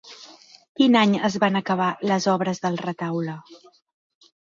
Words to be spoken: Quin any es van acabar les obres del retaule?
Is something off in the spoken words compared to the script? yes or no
no